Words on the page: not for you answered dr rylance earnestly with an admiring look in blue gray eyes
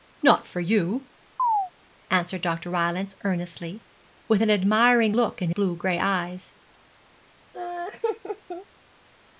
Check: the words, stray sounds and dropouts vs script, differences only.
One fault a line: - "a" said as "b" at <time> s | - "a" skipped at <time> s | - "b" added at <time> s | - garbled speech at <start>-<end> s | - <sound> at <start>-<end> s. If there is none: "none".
- chirp at 1.4-1.7 s
- laugh at 7.5-8.7 s